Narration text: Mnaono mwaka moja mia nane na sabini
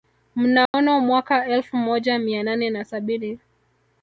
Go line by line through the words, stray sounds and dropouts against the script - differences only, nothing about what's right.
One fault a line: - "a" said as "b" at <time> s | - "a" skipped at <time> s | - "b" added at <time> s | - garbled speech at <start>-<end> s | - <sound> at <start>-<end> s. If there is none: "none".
- dropout at 0.7-0.7 s
- "elfu" added at 1.4 s